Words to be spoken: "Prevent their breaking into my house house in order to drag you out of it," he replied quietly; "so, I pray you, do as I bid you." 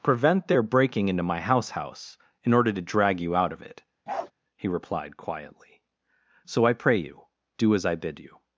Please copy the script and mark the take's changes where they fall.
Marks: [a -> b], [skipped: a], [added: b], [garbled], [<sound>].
"Prevent their breaking into my house house in order to drag you out of it," [bark] he replied quietly; "so, I pray you, do as I bid you."